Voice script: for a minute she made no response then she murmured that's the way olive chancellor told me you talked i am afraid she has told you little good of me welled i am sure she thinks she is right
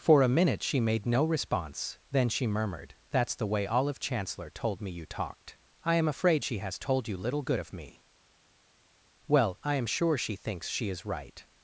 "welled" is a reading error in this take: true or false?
true